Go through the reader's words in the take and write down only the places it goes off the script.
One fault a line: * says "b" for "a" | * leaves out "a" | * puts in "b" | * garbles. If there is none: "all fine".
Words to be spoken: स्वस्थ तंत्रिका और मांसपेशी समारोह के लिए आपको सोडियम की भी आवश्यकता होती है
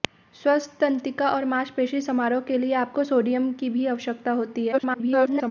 * garbles